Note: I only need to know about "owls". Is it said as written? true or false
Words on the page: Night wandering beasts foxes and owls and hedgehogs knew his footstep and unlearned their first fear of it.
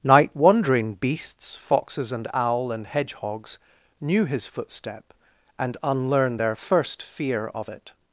false